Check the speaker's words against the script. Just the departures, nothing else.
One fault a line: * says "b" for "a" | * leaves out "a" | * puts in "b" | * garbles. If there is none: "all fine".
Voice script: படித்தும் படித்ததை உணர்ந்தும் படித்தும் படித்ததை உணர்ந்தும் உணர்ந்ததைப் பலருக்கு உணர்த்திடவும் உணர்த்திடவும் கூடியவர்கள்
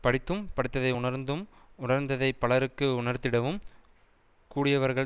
* leaves out "படித்தும் படித்ததை உணர்ந்தும்"
* leaves out "உணர்த்திடவும்"